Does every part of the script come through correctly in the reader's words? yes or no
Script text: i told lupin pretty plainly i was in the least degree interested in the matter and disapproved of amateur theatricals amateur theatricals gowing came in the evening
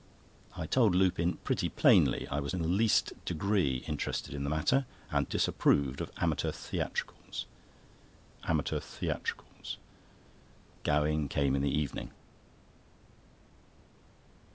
yes